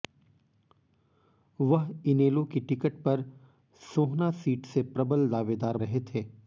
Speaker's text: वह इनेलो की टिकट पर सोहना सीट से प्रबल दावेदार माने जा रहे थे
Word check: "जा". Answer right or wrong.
wrong